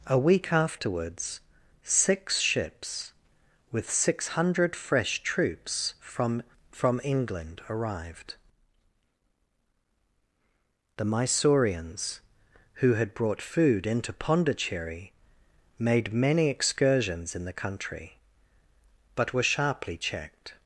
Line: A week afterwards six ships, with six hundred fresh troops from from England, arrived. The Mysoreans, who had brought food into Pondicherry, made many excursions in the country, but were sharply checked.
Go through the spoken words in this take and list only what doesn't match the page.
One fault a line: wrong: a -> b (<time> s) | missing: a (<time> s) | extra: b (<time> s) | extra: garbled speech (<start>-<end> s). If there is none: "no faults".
no faults